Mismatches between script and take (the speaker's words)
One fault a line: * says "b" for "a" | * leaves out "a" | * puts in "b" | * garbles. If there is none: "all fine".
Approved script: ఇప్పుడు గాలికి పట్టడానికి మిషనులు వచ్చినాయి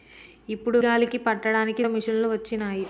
all fine